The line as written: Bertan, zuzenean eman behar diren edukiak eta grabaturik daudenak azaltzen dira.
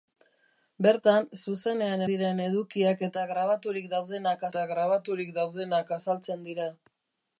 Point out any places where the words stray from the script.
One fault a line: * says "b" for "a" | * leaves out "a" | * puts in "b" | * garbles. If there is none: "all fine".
* says "diren edukiak eta grabaturik daudenak" for "eman behar diren edukiak"